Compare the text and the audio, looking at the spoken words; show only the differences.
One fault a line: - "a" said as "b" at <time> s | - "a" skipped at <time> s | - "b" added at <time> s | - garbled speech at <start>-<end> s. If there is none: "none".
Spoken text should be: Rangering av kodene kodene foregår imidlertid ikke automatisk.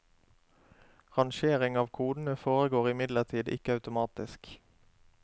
- "kodene" skipped at 2.4 s